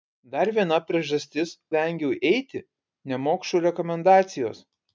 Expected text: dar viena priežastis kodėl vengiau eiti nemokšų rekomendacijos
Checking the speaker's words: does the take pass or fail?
fail